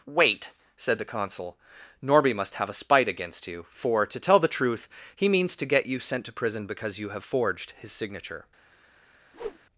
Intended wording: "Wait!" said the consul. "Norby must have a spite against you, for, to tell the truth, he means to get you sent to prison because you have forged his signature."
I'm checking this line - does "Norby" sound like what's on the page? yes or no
yes